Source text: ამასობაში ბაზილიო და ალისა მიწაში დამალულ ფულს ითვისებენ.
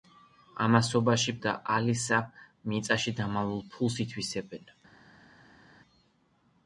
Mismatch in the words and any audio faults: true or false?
true